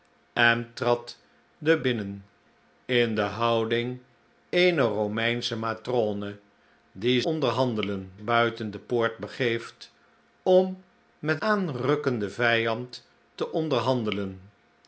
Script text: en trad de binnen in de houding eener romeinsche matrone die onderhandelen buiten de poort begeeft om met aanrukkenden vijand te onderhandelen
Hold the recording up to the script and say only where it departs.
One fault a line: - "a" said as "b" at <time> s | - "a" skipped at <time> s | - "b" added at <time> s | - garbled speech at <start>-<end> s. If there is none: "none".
none